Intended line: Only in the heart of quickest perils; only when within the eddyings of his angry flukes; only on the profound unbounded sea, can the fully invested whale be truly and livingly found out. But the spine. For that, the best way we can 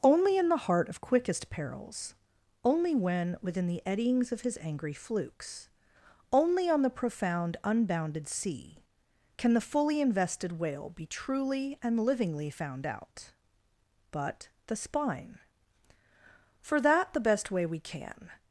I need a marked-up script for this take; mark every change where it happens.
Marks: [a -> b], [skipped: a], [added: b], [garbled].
Only in the heart of quickest perils; only when within the eddyings of his angry flukes; only on the profound unbounded sea, can the fully invested whale be truly and livingly found out. But the spine. For that, the best way we can